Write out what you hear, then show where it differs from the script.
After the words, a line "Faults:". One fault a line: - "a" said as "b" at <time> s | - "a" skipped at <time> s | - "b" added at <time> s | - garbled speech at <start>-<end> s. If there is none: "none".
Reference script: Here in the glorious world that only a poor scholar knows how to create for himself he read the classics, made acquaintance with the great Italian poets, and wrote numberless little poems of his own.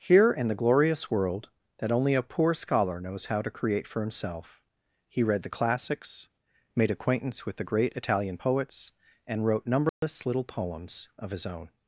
Here in the glorious world that only a poor scholar knows how to create for himself he read the classics, made acquaintance with the great Italian poets, and wrote numberless little poems of his own.
Faults:
none